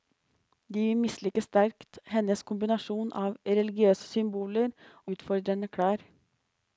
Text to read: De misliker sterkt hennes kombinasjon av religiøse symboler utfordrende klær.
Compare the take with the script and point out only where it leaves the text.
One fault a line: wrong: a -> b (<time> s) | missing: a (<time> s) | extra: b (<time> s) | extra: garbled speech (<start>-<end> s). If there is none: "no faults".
no faults